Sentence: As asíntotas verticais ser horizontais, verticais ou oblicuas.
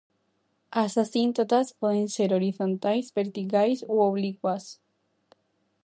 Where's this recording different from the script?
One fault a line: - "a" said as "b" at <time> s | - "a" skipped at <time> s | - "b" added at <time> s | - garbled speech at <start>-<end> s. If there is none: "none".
- "verticais" said as "poden" at 1.8 s